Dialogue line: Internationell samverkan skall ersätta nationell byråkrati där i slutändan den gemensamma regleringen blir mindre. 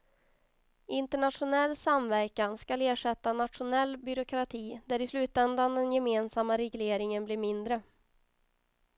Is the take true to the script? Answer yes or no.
yes